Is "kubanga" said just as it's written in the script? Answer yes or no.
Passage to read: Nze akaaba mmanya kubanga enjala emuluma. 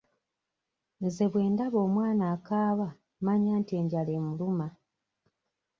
no